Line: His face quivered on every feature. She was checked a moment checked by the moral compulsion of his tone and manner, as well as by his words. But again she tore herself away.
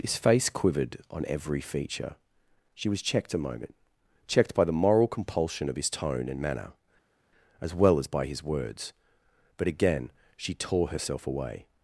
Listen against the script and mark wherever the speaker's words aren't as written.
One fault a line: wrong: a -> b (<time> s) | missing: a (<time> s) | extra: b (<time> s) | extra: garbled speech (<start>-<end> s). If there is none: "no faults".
no faults